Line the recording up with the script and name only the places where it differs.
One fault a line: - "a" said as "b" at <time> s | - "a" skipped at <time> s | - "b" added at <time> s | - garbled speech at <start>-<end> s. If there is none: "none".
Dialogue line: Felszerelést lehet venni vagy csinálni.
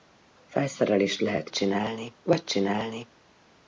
- "venni" said as "csinálni" at 1.5 s